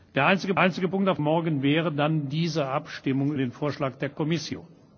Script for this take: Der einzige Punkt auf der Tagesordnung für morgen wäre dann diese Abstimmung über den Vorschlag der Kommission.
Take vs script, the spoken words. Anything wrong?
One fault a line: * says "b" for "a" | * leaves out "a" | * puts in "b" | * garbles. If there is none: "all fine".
* puts in "einzige"
* leaves out "der Tagesordnung für"
* leaves out "über"